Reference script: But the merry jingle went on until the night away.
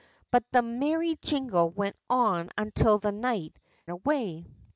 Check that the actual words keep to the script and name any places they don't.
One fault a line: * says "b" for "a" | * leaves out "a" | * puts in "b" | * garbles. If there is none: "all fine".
all fine